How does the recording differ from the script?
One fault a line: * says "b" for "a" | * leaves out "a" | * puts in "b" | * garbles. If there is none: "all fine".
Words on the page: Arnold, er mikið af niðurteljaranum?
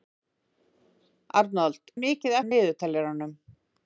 all fine